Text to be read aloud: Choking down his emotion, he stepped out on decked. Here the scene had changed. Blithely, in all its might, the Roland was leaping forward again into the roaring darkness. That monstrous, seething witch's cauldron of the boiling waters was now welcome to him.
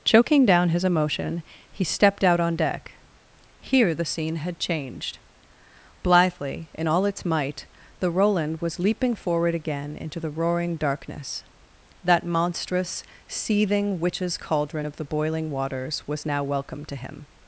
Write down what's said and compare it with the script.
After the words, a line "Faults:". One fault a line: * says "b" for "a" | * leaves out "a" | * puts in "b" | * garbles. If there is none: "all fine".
Choking down his emotion, he stepped out on deck. Here the scene had changed. Blithely, in all its might, the Roland was leaping forward again into the roaring darkness. That monstrous, seething witch's cauldron of the boiling waters was now welcome to him.
Faults:
* says "deck" for "decked"